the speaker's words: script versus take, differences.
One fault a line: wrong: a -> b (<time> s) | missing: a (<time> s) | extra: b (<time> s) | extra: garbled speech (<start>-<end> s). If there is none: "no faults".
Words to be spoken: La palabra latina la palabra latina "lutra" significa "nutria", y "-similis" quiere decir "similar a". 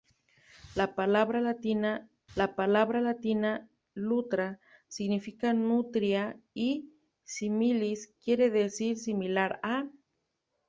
no faults